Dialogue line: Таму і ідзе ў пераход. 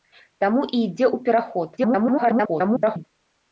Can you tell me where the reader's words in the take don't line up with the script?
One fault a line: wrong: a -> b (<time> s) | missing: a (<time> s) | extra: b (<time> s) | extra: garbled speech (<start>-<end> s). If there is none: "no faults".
extra: garbled speech (1.8-3.0 s)